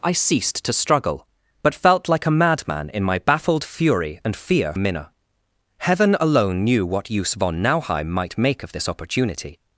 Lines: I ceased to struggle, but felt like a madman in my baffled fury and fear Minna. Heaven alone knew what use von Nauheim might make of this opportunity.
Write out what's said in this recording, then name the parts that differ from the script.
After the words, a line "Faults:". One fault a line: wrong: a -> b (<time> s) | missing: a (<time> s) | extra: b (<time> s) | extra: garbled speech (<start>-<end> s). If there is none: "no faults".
I ceased to struggle, but felt like a madman in my baffled fury and fear Minna. Heaven alone knew what use von Nauheim might make of this opportunity.
Faults:
no faults